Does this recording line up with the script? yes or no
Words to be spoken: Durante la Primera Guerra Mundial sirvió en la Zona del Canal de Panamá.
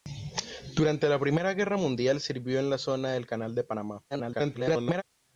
no